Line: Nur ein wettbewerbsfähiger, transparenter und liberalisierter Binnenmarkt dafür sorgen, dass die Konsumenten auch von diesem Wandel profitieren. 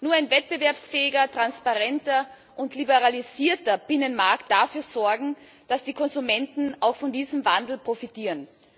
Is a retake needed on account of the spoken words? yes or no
no